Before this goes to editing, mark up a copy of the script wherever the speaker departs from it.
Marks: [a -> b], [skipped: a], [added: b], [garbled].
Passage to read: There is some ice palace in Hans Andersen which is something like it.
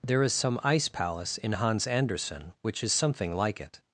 There is some ice palace in Hans Andersen which is something like it.